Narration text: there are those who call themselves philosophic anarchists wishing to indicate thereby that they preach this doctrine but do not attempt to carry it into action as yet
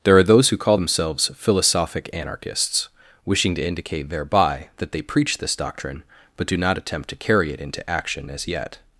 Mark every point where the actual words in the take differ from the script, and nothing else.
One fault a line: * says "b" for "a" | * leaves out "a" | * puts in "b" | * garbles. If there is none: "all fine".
all fine